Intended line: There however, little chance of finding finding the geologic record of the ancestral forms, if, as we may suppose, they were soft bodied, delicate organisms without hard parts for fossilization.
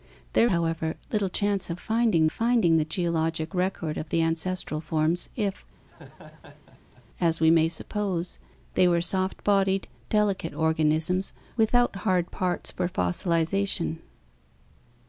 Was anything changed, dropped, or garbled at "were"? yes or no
no